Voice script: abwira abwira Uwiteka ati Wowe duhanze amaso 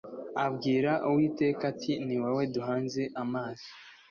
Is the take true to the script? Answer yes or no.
no